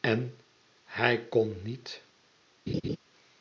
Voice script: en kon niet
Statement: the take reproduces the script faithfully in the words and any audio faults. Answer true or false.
false